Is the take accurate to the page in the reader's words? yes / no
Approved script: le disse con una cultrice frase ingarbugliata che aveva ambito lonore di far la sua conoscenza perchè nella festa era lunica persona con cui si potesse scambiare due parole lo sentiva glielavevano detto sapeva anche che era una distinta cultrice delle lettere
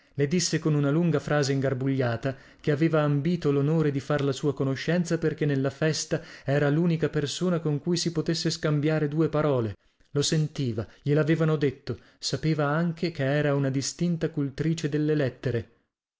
no